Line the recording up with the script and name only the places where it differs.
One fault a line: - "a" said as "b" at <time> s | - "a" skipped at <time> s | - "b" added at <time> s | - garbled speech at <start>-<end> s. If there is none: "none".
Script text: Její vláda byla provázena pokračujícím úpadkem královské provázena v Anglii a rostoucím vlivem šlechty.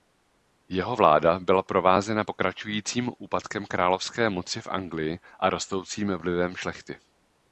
- "Její" said as "Jeho" at 0.7 s
- "provázena" said as "moci" at 4.3 s